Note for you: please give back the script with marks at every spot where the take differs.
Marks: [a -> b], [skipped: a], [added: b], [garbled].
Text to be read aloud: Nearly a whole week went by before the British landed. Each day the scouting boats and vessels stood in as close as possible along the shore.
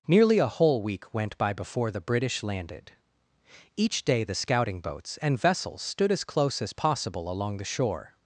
Nearly a whole week went by before the British landed. Each day the scouting boats and vessels stood [skipped: in] as close as possible along the shore.